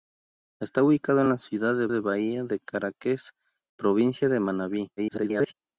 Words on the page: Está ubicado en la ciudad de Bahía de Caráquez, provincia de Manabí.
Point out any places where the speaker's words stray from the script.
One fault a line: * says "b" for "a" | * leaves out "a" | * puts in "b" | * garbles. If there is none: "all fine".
* puts in "de"
* garbles